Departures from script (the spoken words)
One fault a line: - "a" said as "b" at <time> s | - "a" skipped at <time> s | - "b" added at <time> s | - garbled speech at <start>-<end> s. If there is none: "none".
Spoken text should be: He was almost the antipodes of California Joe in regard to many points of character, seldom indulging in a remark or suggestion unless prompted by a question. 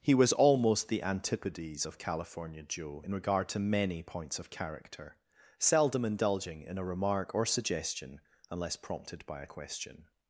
none